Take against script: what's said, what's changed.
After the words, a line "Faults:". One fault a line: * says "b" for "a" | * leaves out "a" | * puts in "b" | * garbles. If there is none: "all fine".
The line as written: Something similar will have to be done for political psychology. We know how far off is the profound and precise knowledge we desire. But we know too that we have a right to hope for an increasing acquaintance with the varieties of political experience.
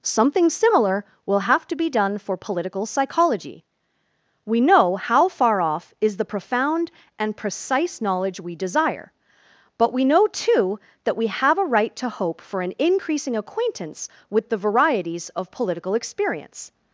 Something similar will have to be done for political psychology. We know how far off is the profound and precise knowledge we desire. But we know too that we have a right to hope for an increasing acquaintance with the varieties of political experience.
Faults:
all fine